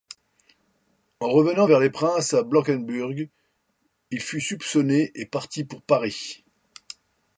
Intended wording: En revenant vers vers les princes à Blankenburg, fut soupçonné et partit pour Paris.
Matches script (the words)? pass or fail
fail